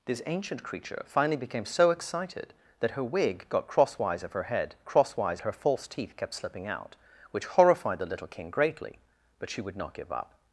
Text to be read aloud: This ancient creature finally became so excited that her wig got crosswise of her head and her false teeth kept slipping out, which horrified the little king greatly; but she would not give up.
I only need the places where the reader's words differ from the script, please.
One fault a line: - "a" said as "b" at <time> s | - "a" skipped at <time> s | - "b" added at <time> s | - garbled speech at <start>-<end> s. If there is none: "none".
- "and" said as "crosswise" at 4.9 s